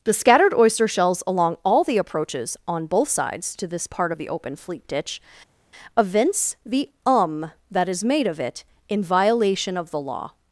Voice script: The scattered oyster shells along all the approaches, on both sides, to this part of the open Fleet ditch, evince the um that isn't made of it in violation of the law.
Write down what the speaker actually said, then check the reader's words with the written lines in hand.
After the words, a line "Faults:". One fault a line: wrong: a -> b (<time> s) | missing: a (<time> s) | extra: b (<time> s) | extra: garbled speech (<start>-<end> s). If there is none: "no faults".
The scattered oyster shells along all the approaches, on both sides, to this part of the open Fleet ditch, evince the um that is made of it in violation of the law.
Faults:
wrong: isn't -> is (7.9 s)